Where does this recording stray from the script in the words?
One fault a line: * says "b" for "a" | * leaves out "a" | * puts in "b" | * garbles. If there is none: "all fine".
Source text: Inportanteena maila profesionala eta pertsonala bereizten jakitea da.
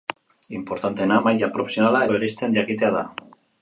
* leaves out "eta pertsonala"